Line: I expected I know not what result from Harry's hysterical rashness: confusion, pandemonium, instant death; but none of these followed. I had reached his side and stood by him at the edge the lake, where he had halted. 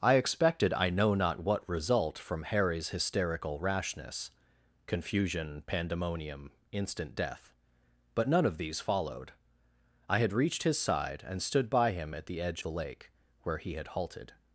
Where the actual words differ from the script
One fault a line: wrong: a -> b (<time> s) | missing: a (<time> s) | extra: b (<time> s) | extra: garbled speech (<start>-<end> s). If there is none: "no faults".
no faults